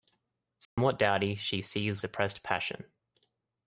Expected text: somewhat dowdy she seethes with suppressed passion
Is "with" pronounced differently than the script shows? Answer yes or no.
yes